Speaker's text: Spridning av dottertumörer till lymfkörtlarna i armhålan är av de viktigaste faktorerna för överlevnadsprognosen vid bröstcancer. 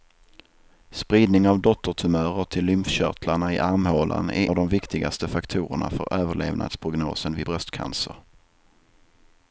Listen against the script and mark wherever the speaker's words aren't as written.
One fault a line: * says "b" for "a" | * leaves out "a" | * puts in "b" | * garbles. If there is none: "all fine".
all fine